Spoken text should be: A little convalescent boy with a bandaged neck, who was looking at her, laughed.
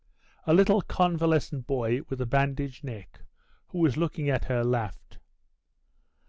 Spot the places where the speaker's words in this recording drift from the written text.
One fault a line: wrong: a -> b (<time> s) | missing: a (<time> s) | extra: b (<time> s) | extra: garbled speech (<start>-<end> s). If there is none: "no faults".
no faults